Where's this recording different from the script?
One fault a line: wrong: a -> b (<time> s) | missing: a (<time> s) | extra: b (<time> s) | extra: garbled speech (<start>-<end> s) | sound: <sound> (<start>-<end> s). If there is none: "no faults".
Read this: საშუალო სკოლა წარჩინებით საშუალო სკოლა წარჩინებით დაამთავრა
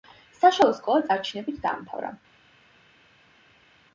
missing: საშუალო სკოლა წარჩინებით (1.6 s)